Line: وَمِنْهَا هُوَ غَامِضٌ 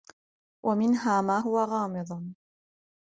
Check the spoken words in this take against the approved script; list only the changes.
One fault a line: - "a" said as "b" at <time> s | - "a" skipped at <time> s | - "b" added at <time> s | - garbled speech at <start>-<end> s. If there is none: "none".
- "مَا" added at 1.2 s